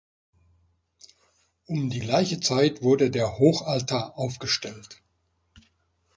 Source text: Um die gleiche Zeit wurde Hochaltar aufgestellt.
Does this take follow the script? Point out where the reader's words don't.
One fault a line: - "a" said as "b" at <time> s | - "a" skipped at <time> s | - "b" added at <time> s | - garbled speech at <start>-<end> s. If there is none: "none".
- "der" added at 3.1 s